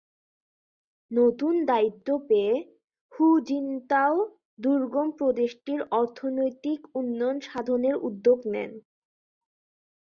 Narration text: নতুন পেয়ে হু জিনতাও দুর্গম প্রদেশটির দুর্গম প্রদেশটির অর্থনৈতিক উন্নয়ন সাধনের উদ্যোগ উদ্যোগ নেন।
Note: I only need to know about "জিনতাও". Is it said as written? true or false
true